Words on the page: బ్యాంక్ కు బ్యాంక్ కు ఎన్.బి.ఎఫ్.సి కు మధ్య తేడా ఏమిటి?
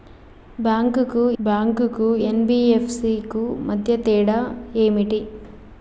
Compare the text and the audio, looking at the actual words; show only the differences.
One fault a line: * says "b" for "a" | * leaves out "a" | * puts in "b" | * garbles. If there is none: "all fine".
all fine